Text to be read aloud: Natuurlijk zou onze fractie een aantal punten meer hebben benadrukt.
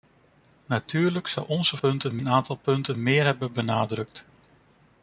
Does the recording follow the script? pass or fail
fail